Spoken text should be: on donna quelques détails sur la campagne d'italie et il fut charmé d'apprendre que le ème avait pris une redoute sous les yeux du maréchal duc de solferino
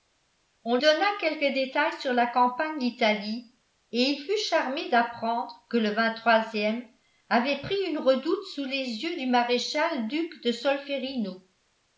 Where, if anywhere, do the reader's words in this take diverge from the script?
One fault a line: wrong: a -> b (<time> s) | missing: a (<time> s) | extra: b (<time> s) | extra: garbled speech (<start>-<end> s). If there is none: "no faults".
no faults